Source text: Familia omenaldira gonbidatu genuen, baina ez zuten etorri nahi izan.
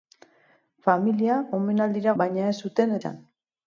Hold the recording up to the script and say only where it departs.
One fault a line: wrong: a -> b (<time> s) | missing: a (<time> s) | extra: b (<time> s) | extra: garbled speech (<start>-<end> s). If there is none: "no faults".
missing: gonbidatu genuen (2.2 s)
missing: etorri nahi (3.0 s)